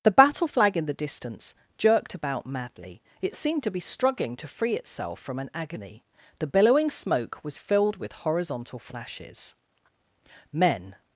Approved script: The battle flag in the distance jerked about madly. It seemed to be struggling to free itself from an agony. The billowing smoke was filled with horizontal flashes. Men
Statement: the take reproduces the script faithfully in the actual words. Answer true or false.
true